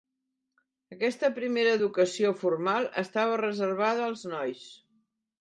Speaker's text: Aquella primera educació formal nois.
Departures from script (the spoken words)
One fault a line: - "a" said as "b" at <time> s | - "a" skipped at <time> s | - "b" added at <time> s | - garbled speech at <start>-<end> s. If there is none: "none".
- "Aquella" said as "Aquesta" at 0.9 s
- "estava reservada als" added at 3.0 s